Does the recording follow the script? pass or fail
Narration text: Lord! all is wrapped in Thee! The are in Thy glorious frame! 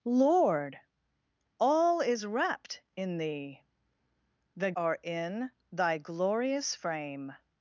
pass